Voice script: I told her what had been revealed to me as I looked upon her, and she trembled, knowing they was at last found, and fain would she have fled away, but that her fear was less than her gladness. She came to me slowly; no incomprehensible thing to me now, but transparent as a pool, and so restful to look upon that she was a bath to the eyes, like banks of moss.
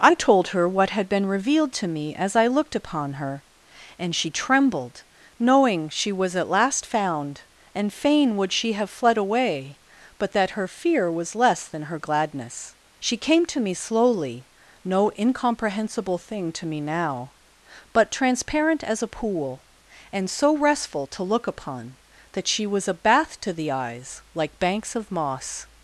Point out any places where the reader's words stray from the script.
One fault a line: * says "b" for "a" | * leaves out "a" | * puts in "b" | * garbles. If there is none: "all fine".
* says "she" for "they"